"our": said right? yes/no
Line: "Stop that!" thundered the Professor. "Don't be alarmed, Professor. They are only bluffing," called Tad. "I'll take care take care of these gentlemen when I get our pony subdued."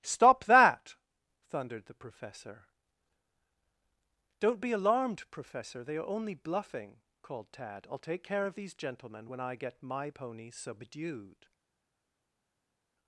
no